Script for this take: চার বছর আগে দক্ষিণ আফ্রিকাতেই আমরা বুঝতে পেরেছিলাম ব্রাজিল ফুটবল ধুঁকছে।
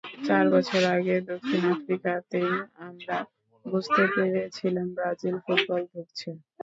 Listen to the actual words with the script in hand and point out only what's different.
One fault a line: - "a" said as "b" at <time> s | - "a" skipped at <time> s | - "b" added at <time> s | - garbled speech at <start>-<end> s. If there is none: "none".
none